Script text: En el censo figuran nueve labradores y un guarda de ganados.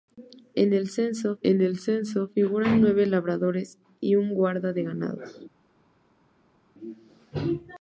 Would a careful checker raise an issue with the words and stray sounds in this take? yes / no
yes